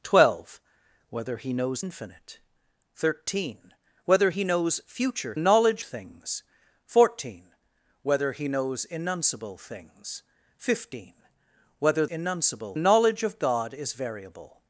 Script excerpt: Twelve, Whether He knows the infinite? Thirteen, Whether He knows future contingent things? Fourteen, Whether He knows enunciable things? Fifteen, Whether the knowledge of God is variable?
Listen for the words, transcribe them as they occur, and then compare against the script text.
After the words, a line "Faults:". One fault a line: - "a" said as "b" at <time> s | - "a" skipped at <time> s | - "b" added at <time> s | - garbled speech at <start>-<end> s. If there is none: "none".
Twelve, Whether He knows infinite? Thirteen, Whether He knows future knowledge things? Fourteen, Whether He knows enunciable things? Fifteen, Whether enunciable knowledge of God is variable?
Faults:
- "the" skipped at 1.8 s
- "contingent" said as "knowledge" at 5.4 s
- "the" said as "enunciable" at 12.1 s